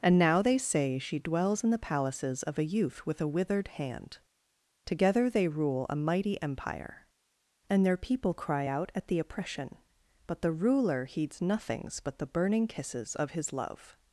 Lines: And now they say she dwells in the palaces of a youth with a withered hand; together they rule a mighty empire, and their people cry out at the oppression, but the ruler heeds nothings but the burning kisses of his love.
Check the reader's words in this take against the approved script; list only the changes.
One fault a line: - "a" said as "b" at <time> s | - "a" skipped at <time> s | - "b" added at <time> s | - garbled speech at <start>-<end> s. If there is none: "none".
none